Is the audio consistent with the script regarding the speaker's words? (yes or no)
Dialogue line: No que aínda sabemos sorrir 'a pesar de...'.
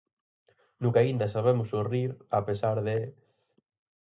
yes